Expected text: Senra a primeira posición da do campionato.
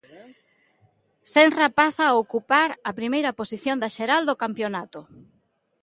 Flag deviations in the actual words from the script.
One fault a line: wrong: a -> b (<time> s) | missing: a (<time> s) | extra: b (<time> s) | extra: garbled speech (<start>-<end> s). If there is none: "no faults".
extra: pasa (1.8 s)
extra: ocupar a (2.2 s)
extra: xeral (4.0 s)